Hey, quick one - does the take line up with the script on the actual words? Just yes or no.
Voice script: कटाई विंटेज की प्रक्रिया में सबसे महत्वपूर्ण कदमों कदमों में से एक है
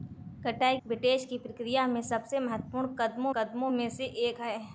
yes